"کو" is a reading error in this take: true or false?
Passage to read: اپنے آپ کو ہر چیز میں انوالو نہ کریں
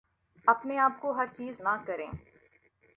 false